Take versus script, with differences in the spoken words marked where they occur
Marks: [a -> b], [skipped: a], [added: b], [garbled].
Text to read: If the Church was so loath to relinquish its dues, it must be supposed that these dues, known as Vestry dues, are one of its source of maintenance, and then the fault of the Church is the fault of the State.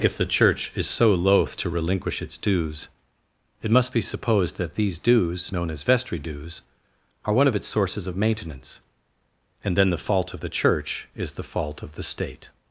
If the Church [was -> is] so loath to relinquish its dues, it must be supposed that these dues, known as Vestry dues, are one of its [source -> sources] of maintenance, and then the fault of the Church is the fault of the State.